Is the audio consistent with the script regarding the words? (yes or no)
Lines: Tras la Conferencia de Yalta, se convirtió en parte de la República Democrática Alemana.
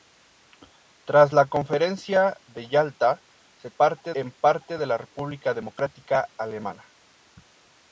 no